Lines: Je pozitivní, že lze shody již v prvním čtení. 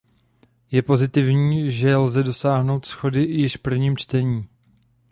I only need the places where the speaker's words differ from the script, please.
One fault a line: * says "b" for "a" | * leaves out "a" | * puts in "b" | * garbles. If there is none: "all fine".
* puts in "dosáhnout"